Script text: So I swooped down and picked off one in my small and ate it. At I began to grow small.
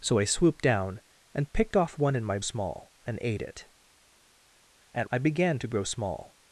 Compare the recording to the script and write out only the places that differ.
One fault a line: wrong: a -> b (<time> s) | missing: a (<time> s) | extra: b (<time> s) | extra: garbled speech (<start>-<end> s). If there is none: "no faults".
no faults